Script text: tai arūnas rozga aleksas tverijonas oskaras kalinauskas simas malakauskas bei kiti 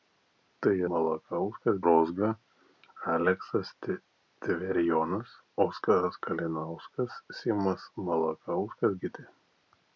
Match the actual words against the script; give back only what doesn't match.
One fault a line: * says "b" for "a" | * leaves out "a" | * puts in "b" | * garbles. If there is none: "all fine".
* says "malakauskas" for "arūnas"
* leaves out "bei"